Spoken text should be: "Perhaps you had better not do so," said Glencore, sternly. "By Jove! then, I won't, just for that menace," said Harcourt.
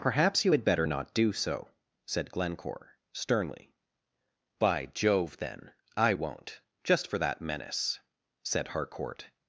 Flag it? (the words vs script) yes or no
no